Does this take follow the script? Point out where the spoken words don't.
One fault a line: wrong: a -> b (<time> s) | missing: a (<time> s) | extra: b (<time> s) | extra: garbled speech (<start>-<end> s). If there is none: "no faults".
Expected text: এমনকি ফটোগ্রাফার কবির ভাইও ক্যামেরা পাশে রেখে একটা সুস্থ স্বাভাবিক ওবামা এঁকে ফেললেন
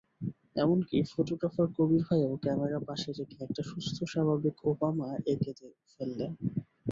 no faults